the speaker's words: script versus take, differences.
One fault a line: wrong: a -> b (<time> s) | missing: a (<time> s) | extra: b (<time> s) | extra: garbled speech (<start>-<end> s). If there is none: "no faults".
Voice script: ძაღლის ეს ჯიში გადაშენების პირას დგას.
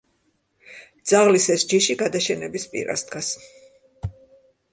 no faults